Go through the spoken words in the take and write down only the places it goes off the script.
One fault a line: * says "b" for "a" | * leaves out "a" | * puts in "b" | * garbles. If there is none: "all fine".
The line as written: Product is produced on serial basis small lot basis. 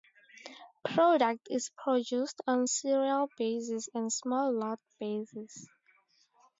* puts in "and"